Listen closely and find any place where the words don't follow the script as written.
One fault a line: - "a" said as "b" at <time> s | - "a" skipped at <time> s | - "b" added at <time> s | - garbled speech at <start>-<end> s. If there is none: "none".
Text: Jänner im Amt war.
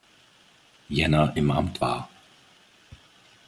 none